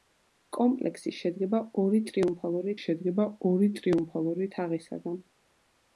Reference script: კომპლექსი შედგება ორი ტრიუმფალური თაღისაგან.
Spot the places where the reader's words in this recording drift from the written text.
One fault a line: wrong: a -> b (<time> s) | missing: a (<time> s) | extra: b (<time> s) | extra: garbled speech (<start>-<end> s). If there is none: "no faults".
extra: შედგება ორი ტრიუმფალური (2.8 s)